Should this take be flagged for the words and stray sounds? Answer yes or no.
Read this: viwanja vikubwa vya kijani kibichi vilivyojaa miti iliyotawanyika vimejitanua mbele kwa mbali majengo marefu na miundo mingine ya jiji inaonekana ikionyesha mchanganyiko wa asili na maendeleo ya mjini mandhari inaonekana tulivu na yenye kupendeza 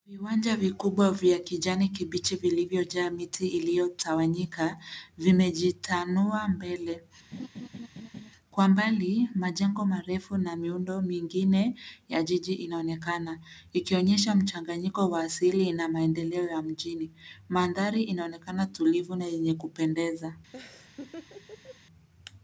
yes